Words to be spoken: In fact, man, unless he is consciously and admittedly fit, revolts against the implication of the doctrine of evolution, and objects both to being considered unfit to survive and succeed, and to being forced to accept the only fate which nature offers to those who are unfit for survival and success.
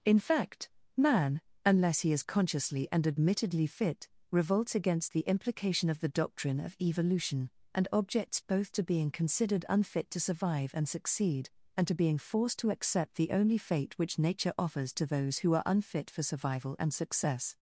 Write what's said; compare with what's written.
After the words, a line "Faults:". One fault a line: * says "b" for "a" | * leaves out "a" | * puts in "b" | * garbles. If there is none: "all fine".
In fact, man, unless he is consciously and admittedly fit, revolts against the implication of the doctrine of evolution, and objects both to being considered unfit to survive and succeed, and to being forced to accept the only fate which nature offers to those who are unfit for survival and success.
Faults:
all fine